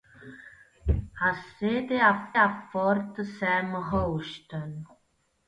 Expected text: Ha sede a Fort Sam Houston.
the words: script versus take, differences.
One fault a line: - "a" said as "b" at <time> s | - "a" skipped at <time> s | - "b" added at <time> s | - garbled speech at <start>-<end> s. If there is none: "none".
- "a" added at 2.4 s